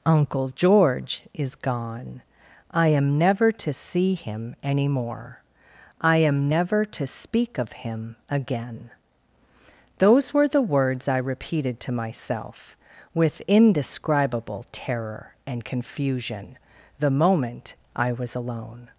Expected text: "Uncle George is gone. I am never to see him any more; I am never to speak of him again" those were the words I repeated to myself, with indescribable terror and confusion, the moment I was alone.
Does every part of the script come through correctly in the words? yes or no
yes